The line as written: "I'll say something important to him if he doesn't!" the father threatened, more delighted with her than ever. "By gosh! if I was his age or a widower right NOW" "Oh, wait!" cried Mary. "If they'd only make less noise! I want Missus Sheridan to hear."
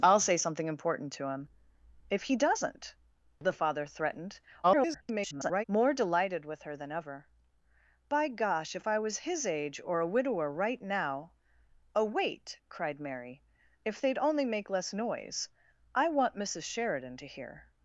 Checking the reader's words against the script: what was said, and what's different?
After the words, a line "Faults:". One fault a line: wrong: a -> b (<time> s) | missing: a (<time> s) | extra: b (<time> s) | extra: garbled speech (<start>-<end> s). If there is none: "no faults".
"I'll say something important to him if he doesn't!" the father threatened, [garbled] more delighted with her than ever. "By gosh! if I was his age or a widower right NOW" "Oh, wait!" cried Mary. "If they'd only make less noise! I want Missus Sheridan to hear."
Faults:
extra: garbled speech (4.6-5.6 s)